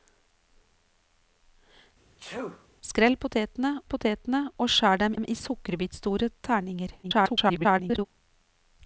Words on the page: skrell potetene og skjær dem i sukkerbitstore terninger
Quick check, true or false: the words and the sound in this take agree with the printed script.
false